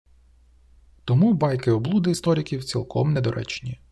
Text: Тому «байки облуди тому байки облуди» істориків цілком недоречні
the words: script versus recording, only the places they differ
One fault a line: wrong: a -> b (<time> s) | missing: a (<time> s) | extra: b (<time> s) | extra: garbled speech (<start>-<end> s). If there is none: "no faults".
missing: тому байки облуди (2.1 s)